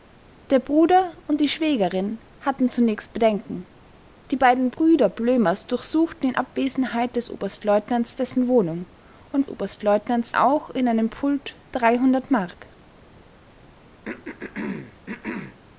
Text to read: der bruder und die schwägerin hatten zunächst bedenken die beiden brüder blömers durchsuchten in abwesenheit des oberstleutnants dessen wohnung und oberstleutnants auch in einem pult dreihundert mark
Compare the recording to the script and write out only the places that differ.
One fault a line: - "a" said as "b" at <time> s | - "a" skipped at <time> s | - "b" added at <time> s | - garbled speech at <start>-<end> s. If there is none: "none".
none